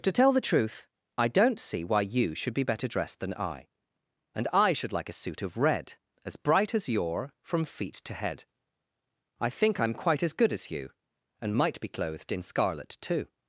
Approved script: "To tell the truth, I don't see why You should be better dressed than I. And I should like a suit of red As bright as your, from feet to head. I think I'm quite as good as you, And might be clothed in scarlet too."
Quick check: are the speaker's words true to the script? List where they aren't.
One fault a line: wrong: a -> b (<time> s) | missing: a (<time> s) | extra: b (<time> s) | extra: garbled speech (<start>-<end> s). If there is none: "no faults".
no faults